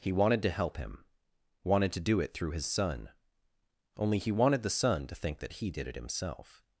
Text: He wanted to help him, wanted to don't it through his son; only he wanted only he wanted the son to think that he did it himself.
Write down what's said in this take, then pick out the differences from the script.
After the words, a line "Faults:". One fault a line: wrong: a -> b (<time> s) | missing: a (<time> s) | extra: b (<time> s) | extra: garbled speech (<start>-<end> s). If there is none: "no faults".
He wanted to help him, wanted to do it through his son; only he wanted the son to think that he did it himself.
Faults:
wrong: don't -> do (2.0 s)
missing: only he wanted (4.6 s)